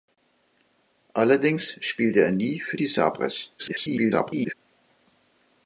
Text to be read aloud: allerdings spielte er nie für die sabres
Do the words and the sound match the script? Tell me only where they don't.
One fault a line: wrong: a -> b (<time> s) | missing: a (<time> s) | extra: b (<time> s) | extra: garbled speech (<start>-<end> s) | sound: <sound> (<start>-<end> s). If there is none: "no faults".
extra: garbled speech (3.6-4.5 s)